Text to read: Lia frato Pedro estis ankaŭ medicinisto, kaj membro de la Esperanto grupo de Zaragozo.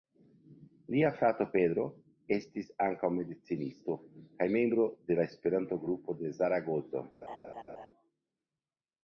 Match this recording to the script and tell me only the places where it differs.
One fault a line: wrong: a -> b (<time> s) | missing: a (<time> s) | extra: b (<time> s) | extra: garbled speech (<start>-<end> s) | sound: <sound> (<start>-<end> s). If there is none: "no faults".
sound: laugh (7.2-7.9 s)